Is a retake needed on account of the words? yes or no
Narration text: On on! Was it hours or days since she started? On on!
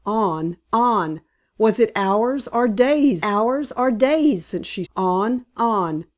yes